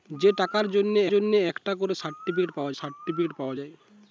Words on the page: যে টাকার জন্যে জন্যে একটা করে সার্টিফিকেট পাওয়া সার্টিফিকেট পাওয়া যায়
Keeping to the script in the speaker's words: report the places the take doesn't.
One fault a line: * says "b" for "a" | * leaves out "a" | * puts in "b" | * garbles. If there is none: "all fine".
all fine